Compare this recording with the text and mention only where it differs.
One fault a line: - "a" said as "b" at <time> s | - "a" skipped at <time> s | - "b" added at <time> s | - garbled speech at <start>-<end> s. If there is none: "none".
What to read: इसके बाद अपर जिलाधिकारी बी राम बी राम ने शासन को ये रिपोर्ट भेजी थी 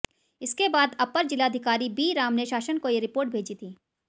- "बी राम" skipped at 2.3 s